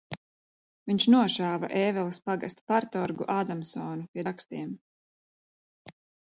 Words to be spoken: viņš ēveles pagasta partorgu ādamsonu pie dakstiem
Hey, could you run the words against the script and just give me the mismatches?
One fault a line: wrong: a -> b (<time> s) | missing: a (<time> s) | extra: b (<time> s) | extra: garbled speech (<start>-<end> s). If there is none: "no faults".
extra: nošāva (1.1 s)